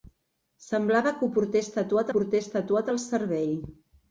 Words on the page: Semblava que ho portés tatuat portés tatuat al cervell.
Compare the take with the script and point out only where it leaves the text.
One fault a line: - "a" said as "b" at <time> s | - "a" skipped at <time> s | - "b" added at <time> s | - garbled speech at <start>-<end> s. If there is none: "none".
none